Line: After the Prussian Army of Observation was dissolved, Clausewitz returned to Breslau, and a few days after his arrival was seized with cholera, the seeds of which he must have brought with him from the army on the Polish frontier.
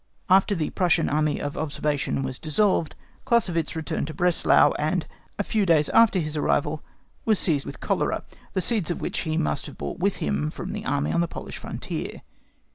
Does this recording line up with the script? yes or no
yes